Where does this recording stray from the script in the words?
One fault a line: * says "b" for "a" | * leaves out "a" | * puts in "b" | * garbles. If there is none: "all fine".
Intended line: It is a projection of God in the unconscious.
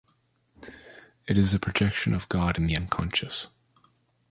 all fine